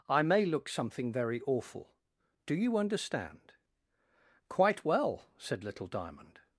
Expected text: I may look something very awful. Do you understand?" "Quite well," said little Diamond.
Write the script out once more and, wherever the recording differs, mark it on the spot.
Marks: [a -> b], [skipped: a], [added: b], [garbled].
I may look something very awful. Do you understand?" "Quite well," said little Diamond.